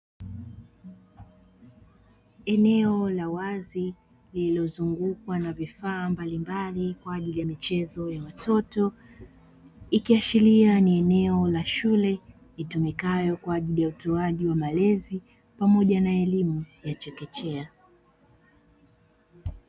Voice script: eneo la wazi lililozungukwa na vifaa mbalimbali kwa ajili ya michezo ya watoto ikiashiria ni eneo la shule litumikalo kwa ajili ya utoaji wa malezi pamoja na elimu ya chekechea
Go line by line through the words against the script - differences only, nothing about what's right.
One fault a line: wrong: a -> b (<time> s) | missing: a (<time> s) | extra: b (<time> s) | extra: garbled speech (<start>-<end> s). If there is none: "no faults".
no faults